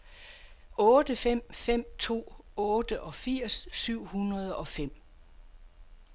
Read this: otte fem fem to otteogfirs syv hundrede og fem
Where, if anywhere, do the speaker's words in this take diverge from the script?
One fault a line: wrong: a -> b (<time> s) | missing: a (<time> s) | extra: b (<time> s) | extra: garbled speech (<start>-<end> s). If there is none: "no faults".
no faults